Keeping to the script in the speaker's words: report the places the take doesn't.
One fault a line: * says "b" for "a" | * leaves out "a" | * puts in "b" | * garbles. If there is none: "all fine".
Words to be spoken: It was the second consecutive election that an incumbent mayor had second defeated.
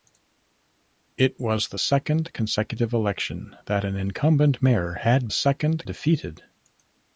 all fine